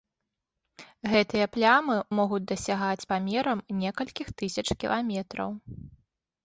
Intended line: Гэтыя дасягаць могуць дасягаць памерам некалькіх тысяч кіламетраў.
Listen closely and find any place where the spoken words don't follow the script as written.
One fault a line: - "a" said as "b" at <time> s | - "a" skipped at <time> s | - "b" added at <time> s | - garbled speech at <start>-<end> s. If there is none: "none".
- "дасягаць" said as "плямы" at 1.5 s